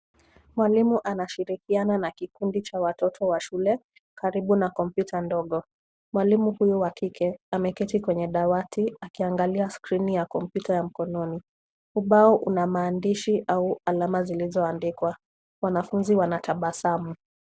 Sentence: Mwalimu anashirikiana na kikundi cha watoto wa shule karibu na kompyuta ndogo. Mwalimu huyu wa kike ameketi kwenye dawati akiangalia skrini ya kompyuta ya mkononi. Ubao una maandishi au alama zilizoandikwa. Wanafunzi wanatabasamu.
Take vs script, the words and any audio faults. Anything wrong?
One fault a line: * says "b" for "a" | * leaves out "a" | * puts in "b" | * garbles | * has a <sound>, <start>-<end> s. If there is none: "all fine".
all fine